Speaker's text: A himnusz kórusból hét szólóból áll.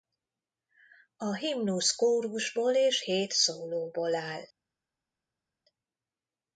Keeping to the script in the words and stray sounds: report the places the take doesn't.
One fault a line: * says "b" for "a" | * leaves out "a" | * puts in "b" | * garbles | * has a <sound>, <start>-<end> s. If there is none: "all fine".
* puts in "és"